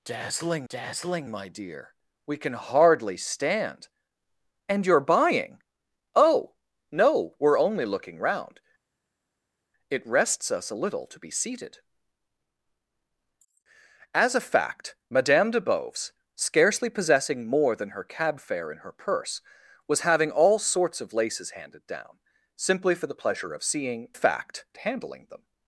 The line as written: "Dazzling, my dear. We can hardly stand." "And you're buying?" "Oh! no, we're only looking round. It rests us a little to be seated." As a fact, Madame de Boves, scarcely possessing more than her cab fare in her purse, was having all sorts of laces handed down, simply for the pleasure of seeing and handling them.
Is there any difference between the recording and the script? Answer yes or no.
yes